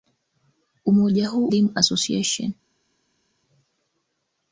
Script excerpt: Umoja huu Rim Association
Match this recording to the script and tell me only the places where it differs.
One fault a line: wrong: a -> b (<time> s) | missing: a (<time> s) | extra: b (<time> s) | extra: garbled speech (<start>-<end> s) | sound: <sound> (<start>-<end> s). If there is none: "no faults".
no faults